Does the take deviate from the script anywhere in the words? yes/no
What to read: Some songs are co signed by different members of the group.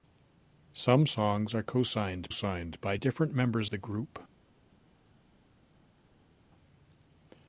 yes